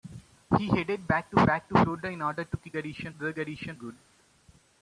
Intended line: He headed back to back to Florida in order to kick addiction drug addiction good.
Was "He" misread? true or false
false